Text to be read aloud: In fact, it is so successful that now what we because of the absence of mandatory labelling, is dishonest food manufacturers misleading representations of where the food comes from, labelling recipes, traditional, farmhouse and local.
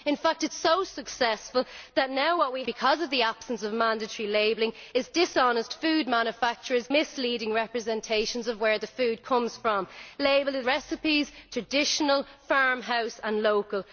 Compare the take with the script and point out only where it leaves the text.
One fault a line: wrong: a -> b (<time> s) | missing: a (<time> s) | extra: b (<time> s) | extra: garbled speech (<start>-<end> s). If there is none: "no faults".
no faults